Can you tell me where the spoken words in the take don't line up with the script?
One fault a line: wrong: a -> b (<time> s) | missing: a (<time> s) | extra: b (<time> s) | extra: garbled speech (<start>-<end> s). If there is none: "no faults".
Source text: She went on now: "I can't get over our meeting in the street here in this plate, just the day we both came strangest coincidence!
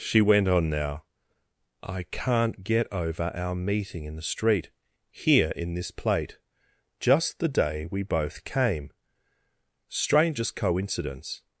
no faults